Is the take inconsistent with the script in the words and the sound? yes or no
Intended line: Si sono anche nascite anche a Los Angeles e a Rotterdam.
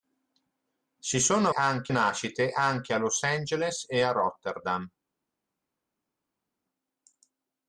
no